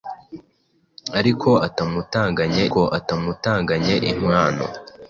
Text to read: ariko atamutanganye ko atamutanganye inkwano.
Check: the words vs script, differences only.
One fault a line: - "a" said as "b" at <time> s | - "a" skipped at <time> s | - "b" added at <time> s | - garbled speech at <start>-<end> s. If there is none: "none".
none